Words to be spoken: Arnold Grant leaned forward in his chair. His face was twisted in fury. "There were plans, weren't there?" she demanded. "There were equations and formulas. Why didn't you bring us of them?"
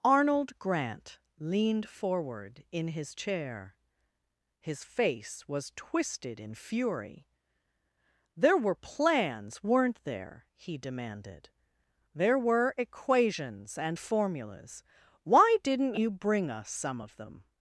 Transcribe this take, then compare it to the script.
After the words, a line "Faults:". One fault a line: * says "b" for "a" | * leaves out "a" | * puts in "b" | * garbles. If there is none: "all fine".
Arnold Grant leaned forward in his chair. His face was twisted in fury. "There were plans, weren't there?" he demanded. "There were equations and formulas. Why didn't you bring us some of them?"
Faults:
* says "he" for "she"
* puts in "some"